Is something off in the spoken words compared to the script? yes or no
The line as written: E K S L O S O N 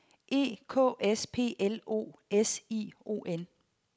yes